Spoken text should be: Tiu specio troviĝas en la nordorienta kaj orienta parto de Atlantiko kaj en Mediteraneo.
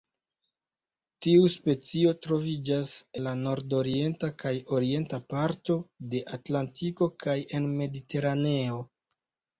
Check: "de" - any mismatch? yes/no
no